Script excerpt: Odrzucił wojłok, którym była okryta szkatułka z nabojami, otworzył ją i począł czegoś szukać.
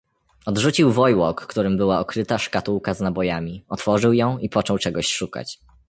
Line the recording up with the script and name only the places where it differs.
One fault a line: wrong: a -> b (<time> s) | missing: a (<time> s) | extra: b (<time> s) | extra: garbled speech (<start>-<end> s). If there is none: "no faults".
no faults